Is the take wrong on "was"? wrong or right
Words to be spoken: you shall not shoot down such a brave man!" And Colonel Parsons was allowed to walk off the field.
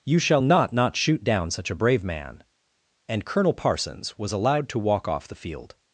right